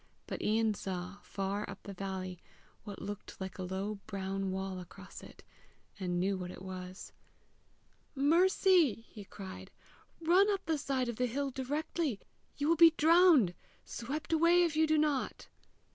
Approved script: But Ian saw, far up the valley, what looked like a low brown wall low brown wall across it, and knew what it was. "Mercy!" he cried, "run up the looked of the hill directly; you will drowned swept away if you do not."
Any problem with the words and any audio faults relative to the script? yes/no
yes